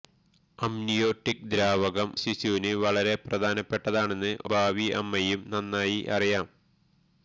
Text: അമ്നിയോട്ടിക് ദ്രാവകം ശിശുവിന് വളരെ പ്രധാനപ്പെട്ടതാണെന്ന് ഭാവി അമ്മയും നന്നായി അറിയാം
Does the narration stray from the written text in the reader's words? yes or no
no